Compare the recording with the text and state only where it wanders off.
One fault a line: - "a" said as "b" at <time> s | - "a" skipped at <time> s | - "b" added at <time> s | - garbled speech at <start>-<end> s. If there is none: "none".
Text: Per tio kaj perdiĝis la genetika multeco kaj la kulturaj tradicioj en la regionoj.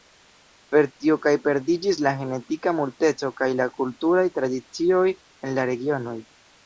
none